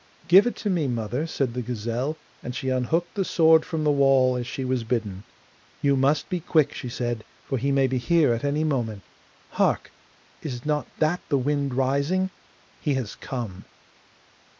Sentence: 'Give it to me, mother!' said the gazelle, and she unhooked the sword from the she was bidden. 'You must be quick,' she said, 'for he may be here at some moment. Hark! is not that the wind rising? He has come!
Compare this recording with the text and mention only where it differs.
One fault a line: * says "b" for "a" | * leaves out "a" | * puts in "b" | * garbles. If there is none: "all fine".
* puts in "wall as"
* says "any" for "some"